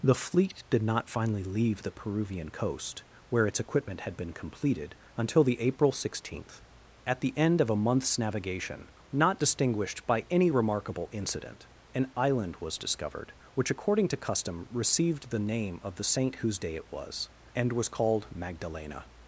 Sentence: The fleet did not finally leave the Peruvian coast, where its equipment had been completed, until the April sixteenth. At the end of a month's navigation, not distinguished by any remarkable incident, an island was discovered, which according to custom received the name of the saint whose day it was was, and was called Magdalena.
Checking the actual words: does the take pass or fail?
fail